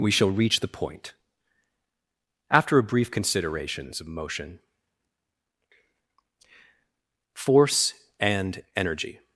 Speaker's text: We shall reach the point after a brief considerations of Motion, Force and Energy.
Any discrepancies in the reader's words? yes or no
no